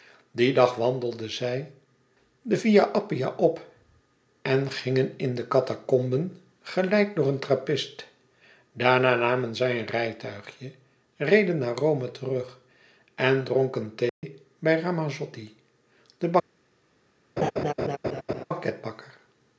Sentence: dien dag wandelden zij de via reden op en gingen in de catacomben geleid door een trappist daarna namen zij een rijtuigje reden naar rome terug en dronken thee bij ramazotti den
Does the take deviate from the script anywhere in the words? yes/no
yes